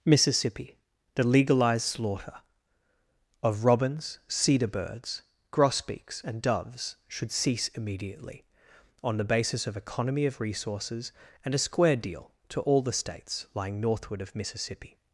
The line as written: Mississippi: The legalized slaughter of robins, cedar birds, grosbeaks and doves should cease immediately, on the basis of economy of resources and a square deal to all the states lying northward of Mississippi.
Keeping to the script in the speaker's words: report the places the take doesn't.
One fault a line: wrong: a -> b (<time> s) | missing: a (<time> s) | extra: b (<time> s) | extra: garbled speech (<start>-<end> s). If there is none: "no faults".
no faults